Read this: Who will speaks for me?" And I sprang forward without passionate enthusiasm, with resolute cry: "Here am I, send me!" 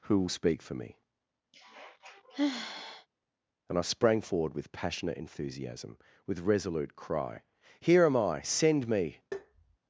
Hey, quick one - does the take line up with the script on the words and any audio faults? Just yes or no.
no